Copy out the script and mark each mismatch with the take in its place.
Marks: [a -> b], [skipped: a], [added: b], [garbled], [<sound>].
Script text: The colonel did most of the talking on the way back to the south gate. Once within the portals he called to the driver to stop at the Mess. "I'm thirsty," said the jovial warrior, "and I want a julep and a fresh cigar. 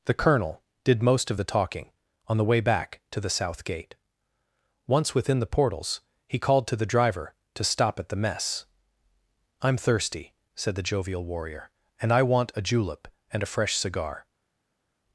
The colonel did most of the talking on the way back to the south gate. Once within the portals he called to the driver to stop at the Mess. "I'm thirsty," said the jovial warrior, "and I want a julep and a fresh cigar.